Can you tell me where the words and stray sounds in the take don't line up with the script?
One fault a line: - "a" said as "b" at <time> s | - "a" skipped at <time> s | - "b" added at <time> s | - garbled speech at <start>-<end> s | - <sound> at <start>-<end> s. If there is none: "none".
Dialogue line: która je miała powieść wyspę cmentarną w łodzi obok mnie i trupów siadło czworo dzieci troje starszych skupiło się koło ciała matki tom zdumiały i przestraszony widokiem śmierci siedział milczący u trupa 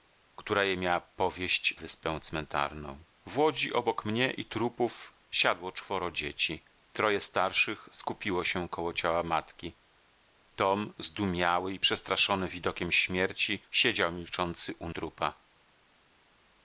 none